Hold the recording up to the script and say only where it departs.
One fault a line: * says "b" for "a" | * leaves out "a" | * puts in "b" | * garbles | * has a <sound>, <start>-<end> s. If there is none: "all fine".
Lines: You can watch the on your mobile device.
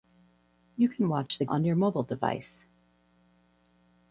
* has a dropout, 1.3-1.3 s